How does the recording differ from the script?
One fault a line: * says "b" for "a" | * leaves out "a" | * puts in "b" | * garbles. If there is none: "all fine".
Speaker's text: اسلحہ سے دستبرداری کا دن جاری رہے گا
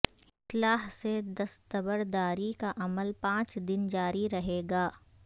* puts in "عمل پانچ"